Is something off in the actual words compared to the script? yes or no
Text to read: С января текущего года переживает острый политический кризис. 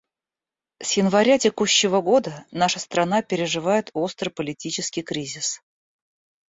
yes